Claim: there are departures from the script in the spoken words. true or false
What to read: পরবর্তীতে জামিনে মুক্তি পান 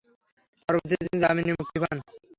true